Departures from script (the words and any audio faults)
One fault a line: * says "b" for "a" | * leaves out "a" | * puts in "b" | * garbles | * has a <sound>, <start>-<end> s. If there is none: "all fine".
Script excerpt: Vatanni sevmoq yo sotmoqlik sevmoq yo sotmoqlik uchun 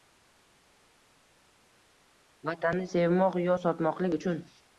* leaves out "sevmoq yo sotmoqlik"